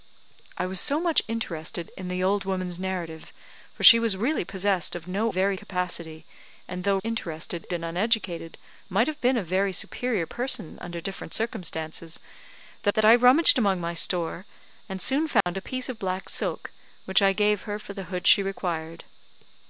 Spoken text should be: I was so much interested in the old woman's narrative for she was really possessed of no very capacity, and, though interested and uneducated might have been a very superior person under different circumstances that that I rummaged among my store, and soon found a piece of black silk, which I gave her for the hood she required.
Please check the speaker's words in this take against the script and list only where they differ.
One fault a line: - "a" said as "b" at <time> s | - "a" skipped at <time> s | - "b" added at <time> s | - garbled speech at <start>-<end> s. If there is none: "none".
none